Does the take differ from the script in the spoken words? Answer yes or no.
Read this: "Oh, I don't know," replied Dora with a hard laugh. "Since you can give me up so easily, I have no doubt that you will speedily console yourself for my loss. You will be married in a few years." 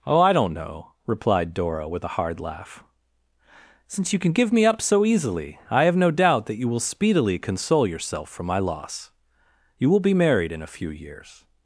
no